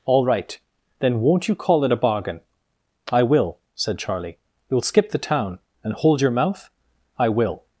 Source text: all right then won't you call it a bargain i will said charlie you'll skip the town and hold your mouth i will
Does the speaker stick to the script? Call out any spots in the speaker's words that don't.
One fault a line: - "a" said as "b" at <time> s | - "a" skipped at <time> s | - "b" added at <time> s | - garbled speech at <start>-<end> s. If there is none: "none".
none